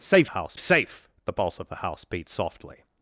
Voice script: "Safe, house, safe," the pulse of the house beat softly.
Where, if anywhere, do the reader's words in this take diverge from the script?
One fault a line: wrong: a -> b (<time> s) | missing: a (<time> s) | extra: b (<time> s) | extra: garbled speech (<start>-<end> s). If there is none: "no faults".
no faults